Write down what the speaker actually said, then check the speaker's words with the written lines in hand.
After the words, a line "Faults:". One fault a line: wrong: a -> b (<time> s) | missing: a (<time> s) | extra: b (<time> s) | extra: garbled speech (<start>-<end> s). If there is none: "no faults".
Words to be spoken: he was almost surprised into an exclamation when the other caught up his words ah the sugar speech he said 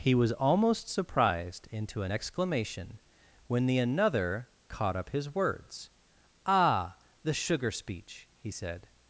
he was almost surprised into an exclamation when the another caught up his words ah the sugar speech he said
Faults:
wrong: other -> another (3.8 s)